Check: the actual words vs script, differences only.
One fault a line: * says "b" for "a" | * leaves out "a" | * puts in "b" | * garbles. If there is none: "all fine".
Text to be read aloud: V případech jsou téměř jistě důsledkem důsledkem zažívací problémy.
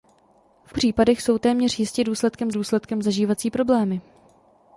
all fine